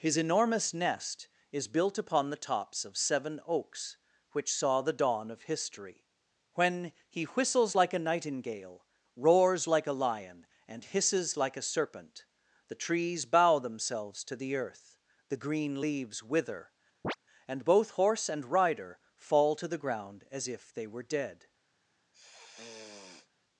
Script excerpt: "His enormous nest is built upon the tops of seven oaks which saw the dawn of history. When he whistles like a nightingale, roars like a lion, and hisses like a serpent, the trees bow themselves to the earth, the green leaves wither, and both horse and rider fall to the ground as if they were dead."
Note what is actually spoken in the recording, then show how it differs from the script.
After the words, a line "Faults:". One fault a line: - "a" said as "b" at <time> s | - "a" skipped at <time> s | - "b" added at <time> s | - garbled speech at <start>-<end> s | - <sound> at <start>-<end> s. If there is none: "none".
"His enormous nest is built upon the tops of seven oaks which saw the dawn of history. When he whistles like a nightingale, roars like a lion, and hisses like a serpent, the trees bow themselves to the earth, the green leaves wither, and both horse and rider fall to the ground as if they were dead."
Faults:
- chirp at 17.0-17.2 s
- sniff at 22.1-23.3 s